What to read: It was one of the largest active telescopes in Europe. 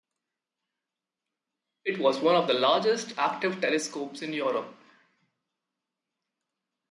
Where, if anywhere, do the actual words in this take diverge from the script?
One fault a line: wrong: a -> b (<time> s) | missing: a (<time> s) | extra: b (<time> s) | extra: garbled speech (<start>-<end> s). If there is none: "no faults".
no faults